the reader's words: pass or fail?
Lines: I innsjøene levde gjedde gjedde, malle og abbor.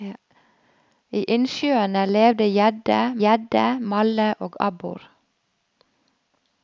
pass